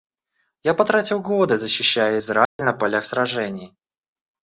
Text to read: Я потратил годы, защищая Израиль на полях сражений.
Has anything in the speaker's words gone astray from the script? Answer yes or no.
no